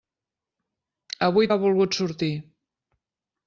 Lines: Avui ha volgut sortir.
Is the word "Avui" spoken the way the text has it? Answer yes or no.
yes